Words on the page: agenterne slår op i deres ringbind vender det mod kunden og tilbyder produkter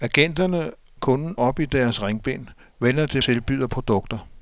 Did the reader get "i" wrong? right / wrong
right